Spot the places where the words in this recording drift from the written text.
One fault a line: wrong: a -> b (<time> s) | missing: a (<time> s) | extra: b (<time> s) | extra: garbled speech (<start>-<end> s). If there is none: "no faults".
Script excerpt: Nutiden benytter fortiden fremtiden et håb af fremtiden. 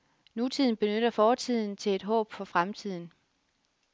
wrong: fremtiden -> til (1.8 s)
wrong: af -> for (2.3 s)